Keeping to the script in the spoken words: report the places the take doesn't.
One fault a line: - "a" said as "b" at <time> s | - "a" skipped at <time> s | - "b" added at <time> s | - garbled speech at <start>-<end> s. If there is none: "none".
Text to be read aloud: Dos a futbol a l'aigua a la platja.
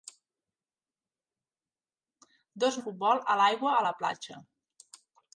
none